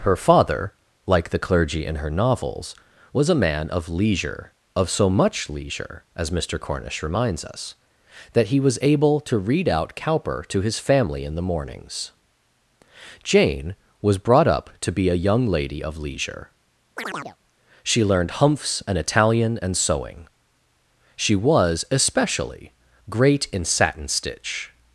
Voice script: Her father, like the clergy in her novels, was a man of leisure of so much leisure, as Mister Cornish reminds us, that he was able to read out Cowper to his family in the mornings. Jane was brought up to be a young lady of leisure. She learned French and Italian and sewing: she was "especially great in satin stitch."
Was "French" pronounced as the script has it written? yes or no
no